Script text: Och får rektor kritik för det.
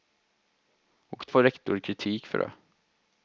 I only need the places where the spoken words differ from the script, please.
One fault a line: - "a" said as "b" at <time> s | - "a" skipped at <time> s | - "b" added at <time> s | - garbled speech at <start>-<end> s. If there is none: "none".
none